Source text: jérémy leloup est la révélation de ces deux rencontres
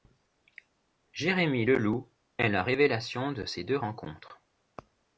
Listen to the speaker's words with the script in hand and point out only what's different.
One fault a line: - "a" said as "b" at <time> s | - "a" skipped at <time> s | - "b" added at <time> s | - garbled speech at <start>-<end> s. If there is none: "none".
none